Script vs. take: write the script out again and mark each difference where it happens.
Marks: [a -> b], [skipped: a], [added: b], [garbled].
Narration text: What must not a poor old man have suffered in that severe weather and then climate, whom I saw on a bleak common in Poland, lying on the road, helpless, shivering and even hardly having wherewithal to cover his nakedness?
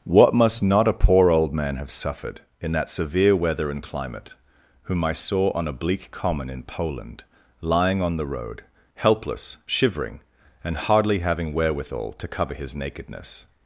What must not a poor old man have suffered in that severe weather and [skipped: then] climate, whom I saw on a bleak common in Poland, lying on the road, helpless, shivering and [skipped: even] hardly having wherewithal to cover his nakedness?